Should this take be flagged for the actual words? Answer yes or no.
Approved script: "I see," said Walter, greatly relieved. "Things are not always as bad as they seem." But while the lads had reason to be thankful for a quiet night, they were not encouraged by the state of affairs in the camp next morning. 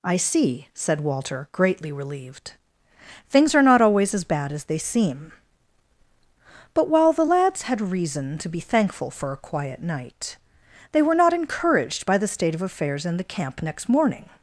no